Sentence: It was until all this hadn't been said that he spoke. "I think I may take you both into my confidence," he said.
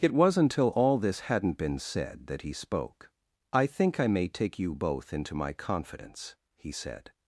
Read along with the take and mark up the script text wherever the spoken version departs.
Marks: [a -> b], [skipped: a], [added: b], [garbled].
It was until all this hadn't been said that he spoke. "I think I may take you both into my confidence," he said.